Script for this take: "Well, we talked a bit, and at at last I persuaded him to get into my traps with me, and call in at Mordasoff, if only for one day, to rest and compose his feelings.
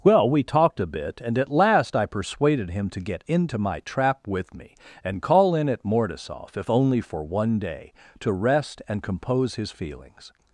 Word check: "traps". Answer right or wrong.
wrong